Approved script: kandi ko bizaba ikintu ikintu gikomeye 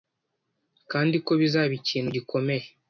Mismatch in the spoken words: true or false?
true